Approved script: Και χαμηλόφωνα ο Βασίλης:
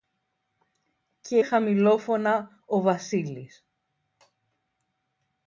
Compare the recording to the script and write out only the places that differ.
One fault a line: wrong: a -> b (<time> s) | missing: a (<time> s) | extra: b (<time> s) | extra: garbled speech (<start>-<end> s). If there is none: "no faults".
no faults